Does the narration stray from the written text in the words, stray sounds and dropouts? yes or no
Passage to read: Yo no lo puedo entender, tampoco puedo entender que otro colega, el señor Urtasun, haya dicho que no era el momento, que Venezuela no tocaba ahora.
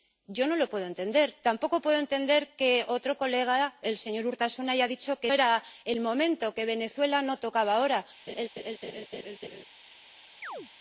yes